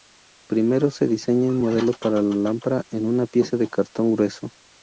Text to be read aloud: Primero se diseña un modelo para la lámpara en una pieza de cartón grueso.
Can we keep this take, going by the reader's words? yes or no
yes